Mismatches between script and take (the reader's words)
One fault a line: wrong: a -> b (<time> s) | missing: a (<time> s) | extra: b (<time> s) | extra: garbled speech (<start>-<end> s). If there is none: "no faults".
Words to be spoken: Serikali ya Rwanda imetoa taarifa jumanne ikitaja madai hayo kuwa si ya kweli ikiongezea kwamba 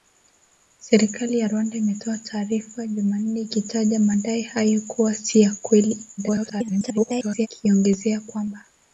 extra: garbled speech (6.2-7.5 s)